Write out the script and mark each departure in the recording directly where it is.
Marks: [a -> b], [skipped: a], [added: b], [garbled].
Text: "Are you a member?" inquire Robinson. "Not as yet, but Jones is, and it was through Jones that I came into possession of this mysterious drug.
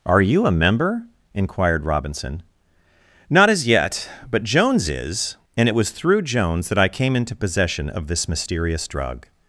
"Are you a member?" [inquire -> inquired] Robinson. "Not as yet, but Jones is, and it was through Jones that I came into possession of this mysterious drug.